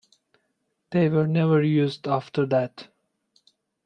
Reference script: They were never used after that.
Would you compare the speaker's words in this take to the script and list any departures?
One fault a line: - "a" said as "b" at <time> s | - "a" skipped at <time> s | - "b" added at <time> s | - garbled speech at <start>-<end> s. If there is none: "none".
none